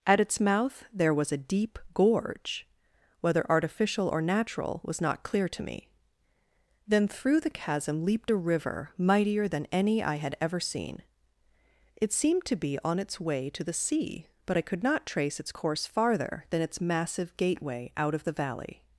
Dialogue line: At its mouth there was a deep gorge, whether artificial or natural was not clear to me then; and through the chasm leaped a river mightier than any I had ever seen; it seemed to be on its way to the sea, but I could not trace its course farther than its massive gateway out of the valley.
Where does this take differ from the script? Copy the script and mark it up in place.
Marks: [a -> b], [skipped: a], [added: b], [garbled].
At its mouth there was a deep gorge, whether artificial or natural was not clear to me then; [skipped: and] through the chasm leaped a river mightier than any I had ever seen; it seemed to be on its way to the sea, but I could not trace its course farther than its massive gateway out of the valley.